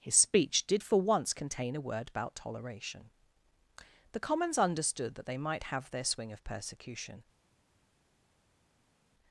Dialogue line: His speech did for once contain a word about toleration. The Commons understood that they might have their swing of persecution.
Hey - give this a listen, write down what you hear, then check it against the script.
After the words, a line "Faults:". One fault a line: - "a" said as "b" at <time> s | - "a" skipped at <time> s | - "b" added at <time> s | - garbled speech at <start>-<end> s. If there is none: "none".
His speech did for once contain a word about toleration. The Commons understood that they might have their swing of persecution.
Faults:
none